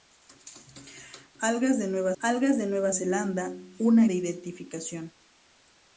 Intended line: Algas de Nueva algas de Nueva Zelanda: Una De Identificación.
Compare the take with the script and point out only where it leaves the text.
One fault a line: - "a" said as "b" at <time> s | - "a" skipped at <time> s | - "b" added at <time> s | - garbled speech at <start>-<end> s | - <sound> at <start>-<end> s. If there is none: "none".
none